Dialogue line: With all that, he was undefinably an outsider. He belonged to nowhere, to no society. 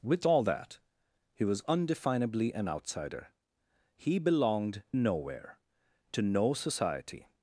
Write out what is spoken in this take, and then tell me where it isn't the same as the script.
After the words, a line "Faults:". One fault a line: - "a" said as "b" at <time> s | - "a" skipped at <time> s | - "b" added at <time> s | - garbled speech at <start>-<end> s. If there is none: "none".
With all that, he was undefinably an outsider. He belonged nowhere, to no society.
Faults:
- "to" skipped at 4.8 s